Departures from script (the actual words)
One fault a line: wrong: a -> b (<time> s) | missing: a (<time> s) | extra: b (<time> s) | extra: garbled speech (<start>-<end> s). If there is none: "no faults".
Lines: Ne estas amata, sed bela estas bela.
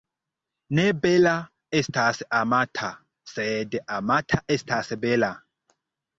extra: bela (1.0 s)
wrong: bela -> amata (4.0 s)